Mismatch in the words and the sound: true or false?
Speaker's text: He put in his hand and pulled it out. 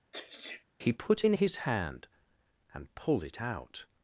true